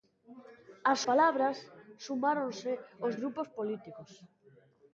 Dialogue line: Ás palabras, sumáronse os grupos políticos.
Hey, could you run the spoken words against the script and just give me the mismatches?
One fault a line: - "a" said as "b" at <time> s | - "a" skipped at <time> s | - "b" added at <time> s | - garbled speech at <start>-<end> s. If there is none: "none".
none